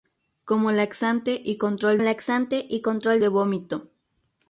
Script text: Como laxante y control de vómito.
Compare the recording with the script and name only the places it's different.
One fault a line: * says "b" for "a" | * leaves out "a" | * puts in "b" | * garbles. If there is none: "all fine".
* puts in "laxante y control"